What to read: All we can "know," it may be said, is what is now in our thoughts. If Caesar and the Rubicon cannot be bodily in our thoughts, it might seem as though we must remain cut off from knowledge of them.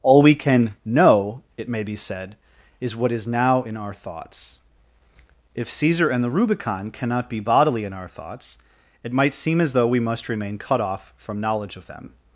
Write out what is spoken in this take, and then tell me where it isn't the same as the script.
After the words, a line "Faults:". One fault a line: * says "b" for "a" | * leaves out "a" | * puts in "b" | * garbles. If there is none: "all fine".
All we can "know," it may be said, is what is now in our thoughts. If Caesar and the Rubicon cannot be bodily in our thoughts, it might seem as though we must remain cut off from knowledge of them.
Faults:
all fine